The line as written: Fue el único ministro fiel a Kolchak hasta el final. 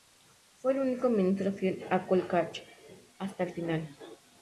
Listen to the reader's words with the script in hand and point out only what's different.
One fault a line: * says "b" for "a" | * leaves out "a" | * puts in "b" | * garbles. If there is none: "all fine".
all fine